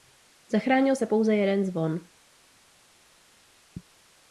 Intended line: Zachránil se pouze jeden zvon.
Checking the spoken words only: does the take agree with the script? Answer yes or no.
yes